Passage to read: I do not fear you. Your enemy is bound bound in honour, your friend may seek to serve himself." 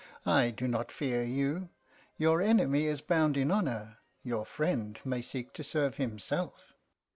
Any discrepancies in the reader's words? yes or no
yes